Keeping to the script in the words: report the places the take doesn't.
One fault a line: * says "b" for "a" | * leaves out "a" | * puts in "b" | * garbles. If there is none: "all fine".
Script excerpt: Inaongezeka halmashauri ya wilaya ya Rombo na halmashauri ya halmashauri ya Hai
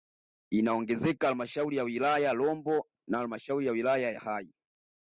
* says "wilaya" for "halmashauri"